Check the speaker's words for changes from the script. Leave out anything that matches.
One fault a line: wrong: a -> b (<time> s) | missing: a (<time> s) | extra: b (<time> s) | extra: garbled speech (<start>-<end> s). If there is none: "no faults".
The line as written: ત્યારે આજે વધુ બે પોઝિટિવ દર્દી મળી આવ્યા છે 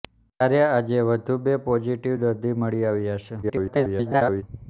extra: garbled speech (3.4-4.4 s)